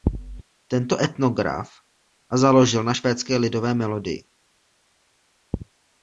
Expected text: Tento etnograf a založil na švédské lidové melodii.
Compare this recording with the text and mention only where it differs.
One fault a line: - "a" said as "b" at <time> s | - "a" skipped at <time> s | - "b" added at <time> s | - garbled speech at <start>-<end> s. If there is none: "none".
none